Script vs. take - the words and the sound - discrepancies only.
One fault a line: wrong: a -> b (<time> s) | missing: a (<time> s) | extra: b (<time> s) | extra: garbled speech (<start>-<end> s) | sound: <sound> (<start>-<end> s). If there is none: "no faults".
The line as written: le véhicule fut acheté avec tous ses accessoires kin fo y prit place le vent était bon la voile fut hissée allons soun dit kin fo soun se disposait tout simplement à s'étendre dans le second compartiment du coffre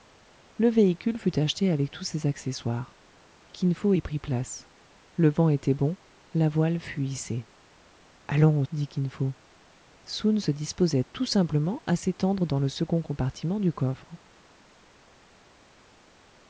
missing: soun (8.6 s)